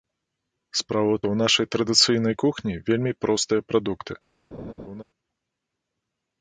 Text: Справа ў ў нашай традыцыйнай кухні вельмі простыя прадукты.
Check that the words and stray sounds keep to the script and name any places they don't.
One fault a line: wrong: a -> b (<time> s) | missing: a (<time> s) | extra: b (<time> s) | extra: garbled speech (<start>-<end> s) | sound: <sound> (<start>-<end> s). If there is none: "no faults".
sound: laugh (4.5-5.0 s)